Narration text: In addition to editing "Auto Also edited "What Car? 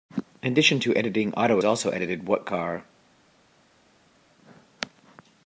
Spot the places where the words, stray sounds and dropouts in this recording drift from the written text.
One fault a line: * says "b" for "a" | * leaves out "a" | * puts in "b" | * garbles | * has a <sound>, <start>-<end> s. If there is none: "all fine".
all fine